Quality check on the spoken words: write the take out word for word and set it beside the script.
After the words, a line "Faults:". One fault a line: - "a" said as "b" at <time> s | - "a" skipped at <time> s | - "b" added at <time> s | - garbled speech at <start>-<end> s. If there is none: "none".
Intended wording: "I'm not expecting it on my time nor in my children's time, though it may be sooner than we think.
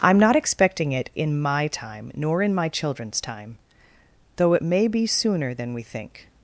"I'm not expecting it in my time nor in my children's time, though it may be sooner than we think.
Faults:
- "on" said as "in" at 1.1 s